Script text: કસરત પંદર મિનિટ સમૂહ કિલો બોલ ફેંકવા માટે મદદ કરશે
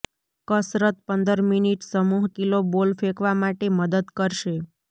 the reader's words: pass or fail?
pass